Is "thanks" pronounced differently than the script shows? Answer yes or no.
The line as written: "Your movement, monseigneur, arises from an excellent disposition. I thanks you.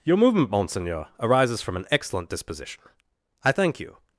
yes